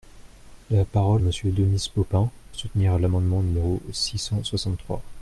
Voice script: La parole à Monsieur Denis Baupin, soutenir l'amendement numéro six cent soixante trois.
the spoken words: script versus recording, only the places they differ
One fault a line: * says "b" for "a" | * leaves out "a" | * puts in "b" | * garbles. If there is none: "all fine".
all fine